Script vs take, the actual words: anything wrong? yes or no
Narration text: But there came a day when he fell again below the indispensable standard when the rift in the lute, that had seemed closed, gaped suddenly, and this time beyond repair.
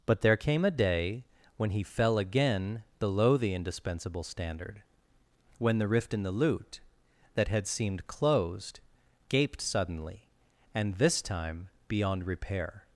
no